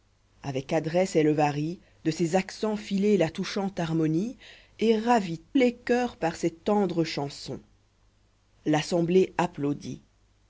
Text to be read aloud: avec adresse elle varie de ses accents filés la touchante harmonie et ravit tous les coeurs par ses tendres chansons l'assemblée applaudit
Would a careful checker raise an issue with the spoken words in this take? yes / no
yes